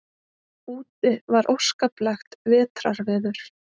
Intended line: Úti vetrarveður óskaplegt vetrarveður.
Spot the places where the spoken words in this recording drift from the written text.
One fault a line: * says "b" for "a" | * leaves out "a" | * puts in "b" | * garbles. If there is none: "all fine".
* says "var" for "vetrarveður"